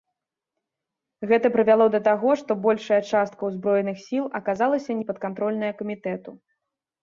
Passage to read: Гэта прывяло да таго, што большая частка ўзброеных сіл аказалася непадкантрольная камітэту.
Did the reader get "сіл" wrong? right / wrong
right